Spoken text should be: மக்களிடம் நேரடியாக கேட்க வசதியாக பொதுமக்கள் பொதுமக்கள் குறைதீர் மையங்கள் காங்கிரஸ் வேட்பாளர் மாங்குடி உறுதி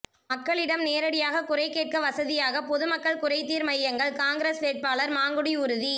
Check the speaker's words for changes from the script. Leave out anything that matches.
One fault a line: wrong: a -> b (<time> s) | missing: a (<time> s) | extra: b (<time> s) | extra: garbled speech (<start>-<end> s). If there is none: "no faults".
extra: குறை (1.4 s)
missing: பொதுமக்கள் (3.2 s)